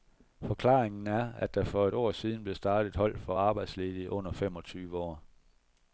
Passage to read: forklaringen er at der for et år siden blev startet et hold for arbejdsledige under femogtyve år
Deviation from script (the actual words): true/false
false